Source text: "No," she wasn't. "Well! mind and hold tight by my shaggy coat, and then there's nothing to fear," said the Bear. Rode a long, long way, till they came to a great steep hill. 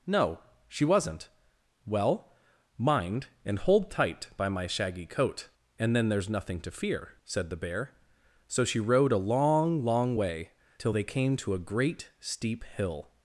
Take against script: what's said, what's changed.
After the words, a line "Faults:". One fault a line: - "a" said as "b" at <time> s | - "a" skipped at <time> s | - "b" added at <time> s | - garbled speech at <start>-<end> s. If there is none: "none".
"No," she wasn't. "Well! mind and hold tight by my shaggy coat, and then there's nothing to fear," said the Bear. So she rode a long, long way, till they came to a great steep hill.
Faults:
- "So she" added at 8.5 s